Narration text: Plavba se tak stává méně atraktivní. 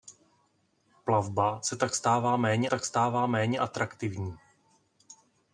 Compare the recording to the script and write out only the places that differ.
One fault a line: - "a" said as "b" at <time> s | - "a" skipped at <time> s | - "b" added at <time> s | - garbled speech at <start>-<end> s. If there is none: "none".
- "tak stává méně" added at 2.7 s